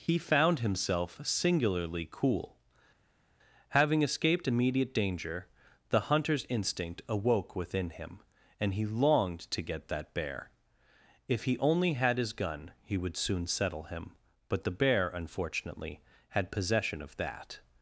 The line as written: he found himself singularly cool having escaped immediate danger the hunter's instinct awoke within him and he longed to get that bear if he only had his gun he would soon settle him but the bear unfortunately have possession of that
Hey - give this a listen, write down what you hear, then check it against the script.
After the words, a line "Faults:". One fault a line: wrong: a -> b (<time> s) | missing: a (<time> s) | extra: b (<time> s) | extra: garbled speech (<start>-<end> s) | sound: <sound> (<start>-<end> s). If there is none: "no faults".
he found himself singularly cool having escaped immediate danger the hunter's instinct awoke within him and he longed to get that bear if he only had his gun he would soon settle him but the bear unfortunately had possession of that
Faults:
wrong: have -> had (16.3 s)